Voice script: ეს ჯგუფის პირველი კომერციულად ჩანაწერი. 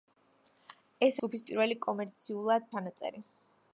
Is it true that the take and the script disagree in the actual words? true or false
false